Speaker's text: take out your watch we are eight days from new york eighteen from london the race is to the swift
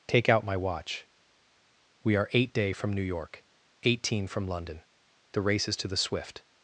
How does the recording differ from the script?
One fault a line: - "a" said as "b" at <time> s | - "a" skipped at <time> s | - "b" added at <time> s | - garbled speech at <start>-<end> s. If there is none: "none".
- "your" said as "my" at 0.5 s
- "days" said as "day" at 2.5 s